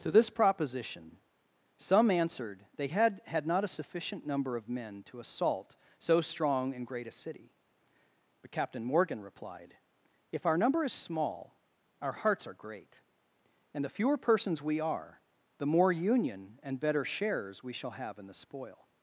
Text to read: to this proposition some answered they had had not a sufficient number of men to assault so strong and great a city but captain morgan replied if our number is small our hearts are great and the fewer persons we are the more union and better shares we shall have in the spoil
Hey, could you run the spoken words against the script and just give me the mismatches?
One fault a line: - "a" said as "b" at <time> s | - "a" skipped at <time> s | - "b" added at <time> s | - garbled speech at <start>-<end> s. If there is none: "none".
none